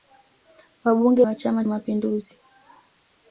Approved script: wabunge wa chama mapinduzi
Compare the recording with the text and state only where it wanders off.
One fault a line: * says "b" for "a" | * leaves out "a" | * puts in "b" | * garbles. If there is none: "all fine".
all fine